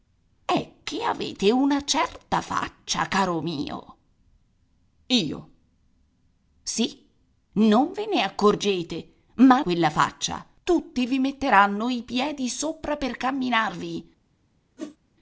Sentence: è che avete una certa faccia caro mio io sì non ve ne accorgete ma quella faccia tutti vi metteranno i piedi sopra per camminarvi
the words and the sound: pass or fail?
fail